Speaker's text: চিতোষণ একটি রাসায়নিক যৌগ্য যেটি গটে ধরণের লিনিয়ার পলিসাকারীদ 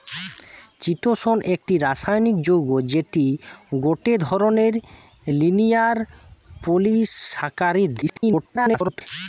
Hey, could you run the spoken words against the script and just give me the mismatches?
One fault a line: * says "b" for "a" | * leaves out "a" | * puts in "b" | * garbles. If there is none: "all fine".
* garbles